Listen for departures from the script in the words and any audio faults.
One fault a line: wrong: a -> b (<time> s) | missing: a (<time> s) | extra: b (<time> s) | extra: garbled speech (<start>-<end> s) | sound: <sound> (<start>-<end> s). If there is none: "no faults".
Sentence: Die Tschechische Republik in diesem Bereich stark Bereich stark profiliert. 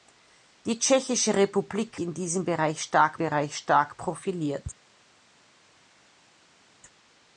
no faults